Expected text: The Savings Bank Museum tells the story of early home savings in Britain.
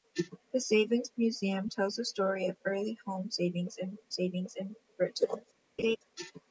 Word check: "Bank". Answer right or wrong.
wrong